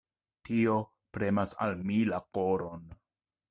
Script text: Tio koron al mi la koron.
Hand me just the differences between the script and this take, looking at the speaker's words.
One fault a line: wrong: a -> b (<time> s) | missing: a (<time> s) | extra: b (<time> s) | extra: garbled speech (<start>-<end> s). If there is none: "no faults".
wrong: koron -> premas (1.2 s)